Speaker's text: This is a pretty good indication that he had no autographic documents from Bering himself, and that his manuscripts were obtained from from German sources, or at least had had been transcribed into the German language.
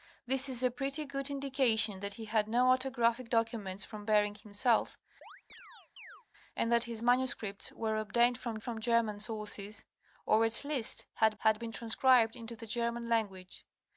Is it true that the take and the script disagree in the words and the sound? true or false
true